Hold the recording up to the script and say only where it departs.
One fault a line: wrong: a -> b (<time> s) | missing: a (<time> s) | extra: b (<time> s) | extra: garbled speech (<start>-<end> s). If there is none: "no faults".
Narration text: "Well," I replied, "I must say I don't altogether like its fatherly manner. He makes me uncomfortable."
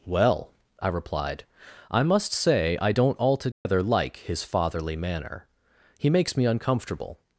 wrong: its -> his (4.2 s)